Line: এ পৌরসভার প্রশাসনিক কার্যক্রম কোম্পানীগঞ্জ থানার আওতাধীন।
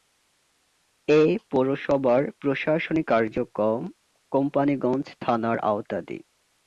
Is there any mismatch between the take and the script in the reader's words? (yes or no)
no